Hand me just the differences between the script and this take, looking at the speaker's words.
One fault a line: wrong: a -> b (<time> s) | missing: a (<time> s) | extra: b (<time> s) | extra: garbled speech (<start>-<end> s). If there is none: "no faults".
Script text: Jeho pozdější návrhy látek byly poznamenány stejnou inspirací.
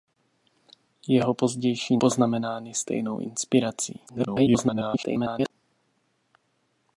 missing: návrhy látek byly (2.0 s)
extra: garbled speech (4.1-5.5 s)